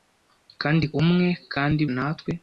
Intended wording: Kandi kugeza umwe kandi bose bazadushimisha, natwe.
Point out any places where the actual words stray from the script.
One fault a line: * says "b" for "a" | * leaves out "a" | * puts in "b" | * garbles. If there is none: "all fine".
* leaves out "kugeza"
* leaves out "bose bazadushimisha"